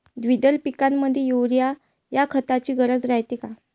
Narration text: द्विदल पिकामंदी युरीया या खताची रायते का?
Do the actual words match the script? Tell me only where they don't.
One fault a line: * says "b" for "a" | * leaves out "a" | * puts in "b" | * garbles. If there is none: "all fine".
* puts in "गरज"